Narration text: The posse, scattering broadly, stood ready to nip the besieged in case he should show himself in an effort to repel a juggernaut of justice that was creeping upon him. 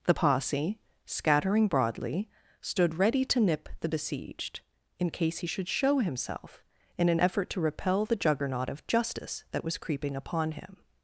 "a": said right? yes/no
no